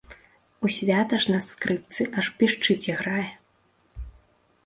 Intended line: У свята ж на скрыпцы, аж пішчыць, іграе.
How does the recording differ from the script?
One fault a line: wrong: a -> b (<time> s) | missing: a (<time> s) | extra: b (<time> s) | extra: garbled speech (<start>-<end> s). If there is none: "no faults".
no faults